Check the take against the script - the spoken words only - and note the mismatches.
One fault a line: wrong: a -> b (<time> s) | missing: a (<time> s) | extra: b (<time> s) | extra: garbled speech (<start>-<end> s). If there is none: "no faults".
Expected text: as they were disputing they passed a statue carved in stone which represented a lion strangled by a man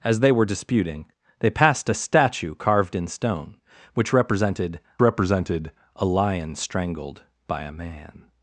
extra: represented (5.0 s)